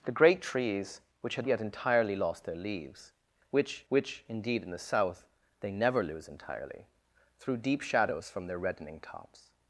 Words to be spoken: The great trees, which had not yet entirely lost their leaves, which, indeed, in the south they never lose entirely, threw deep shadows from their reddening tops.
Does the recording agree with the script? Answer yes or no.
no